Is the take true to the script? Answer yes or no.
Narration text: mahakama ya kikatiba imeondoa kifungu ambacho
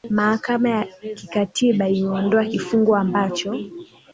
yes